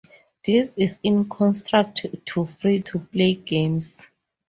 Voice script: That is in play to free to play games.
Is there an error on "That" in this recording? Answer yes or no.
yes